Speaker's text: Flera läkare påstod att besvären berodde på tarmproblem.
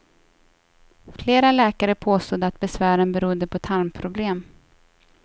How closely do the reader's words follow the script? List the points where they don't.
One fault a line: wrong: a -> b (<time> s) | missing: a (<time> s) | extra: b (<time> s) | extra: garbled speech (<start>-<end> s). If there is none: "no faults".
no faults